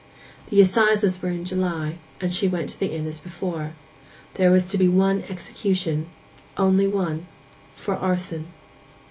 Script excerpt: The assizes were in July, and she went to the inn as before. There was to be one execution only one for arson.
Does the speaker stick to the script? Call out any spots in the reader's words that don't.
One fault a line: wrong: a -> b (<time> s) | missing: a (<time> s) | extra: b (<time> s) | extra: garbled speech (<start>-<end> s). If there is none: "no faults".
no faults